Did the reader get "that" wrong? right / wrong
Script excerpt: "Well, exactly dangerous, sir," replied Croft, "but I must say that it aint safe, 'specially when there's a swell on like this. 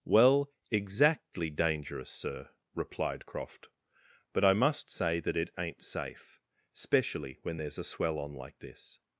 right